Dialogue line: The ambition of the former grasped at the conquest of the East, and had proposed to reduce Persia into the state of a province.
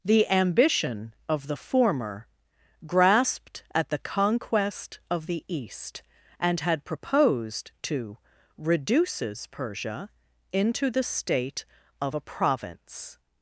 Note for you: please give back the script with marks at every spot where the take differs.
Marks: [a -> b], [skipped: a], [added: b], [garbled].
The ambition of the former grasped at the conquest of the East, and had proposed to [reduce -> reduces] Persia into the state of a province.